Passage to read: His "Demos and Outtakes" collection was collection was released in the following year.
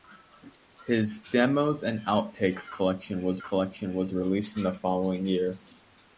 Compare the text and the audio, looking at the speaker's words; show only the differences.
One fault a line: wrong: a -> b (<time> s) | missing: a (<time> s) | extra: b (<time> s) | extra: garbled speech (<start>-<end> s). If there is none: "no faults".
no faults